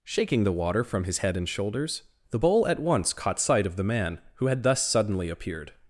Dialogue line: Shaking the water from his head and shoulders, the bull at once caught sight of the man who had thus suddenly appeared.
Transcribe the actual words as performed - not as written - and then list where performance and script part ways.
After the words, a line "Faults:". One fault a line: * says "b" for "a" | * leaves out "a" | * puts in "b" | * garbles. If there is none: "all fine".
Shaking the water from his head and shoulders, the bull at once caught sight of the man who had thus suddenly appeared.
Faults:
all fine